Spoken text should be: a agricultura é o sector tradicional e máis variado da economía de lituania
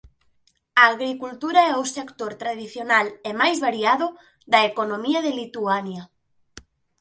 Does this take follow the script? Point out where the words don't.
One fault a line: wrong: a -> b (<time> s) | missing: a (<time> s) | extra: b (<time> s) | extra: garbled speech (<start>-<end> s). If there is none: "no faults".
no faults